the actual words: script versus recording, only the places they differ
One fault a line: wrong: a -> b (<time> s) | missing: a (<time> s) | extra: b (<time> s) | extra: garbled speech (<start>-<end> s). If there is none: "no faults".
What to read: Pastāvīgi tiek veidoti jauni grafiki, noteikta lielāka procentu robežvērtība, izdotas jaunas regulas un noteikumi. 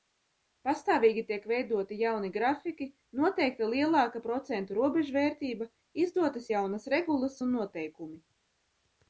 no faults